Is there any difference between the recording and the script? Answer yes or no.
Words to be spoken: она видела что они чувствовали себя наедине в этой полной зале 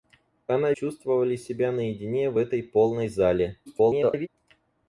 yes